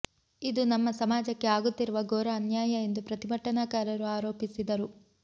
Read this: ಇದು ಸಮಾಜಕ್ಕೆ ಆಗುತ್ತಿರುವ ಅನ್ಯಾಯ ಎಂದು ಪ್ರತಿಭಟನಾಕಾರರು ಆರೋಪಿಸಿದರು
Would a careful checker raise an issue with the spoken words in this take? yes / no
yes